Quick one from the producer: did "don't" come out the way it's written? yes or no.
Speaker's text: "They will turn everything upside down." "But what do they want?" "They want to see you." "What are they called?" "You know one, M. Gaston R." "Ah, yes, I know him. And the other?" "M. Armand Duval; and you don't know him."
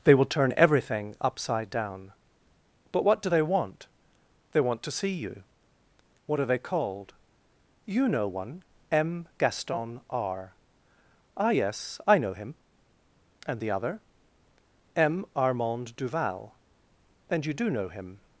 no